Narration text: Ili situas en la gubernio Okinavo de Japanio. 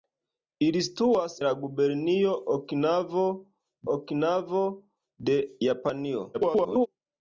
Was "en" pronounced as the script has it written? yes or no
no